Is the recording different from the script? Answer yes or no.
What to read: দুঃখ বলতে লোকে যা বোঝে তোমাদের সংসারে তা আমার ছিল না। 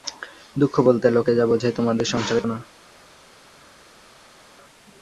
yes